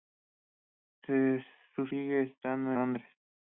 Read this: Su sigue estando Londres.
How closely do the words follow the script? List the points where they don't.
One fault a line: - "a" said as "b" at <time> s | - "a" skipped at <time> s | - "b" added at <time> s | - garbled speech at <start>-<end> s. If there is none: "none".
none